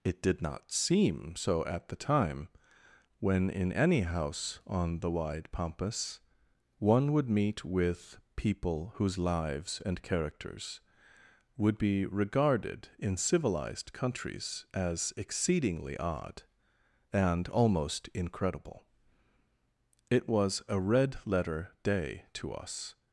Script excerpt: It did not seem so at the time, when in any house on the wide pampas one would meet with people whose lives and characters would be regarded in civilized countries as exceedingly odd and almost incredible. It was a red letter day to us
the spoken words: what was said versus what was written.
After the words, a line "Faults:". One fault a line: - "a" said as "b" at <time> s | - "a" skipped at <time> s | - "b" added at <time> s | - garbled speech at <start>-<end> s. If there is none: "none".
It did not seem so at the time, when in any house on the wide pampas one would meet with people whose lives and characters would be regarded in civilized countries as exceedingly odd and almost incredible. It was a red letter day to us
Faults:
none